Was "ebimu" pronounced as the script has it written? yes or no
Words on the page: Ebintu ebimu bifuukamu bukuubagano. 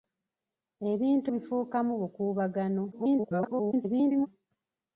no